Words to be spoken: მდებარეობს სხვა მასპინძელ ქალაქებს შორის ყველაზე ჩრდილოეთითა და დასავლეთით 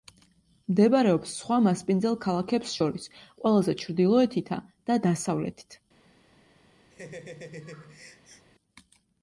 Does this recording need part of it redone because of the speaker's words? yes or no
no